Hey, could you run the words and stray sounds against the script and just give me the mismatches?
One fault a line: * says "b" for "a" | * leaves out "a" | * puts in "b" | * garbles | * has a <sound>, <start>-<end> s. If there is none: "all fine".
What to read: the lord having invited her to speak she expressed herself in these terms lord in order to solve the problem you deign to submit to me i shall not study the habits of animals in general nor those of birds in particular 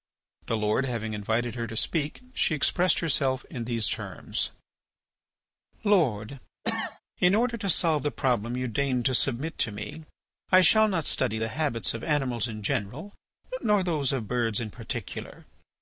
* has a cough, 6.6-7.0 s